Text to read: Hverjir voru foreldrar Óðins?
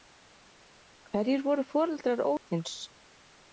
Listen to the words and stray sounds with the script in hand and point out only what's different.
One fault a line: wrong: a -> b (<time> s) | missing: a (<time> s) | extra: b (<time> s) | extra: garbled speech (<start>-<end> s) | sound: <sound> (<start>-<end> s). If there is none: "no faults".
sound: dropout (2.4-2.5 s)